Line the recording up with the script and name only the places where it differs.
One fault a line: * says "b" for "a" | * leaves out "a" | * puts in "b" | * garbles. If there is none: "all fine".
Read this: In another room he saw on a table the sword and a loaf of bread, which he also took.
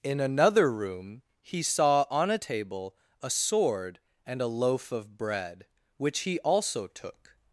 * says "a" for "the"